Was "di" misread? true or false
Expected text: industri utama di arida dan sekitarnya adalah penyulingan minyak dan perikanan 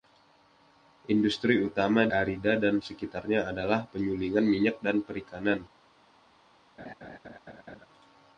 true